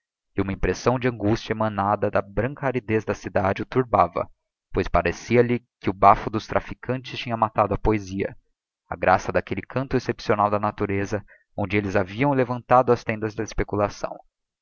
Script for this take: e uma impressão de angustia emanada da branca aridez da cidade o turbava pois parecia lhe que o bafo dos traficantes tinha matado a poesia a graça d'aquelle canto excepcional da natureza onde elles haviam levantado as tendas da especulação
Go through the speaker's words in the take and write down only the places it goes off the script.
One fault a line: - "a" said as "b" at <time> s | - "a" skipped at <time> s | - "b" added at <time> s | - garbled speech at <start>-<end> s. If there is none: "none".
none